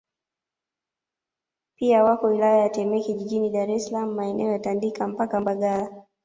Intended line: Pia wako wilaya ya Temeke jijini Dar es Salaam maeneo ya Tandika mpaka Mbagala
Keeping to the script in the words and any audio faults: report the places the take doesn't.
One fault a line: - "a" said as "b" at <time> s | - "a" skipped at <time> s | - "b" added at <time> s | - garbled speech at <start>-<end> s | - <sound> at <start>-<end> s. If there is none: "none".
none